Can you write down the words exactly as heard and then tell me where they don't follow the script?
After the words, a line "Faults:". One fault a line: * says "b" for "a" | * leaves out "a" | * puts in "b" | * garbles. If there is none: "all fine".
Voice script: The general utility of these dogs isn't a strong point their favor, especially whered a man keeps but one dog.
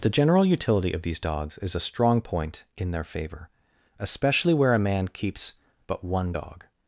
The general utility of these dogs is a strong point in their favor, especially where a man keeps but one dog.
Faults:
* says "is" for "isn't"
* puts in "in"
* says "where" for "whered"